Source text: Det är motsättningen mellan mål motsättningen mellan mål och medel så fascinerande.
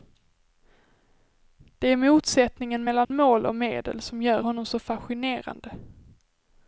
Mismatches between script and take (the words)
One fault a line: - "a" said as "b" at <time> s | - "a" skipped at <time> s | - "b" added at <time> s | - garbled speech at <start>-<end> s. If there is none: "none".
- "motsättningen mellan mål och medel" said as "och medel som gör honom" at 3.4 s